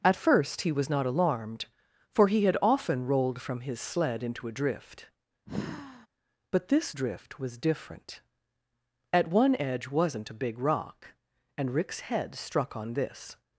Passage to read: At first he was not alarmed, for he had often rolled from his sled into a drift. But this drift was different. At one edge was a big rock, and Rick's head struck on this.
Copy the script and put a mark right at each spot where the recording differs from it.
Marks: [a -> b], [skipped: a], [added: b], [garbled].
At first he was not alarmed, for he had often rolled from his sled into a drift. But this drift was different. At one edge [was -> wasn't] a big rock, and Rick's head struck on this.